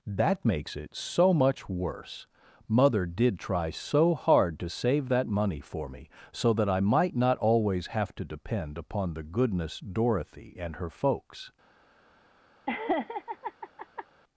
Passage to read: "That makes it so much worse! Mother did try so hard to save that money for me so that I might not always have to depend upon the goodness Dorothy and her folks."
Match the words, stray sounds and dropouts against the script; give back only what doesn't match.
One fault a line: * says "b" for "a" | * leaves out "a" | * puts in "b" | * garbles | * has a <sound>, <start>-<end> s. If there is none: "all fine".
* has a laugh, 12.7-14.1 s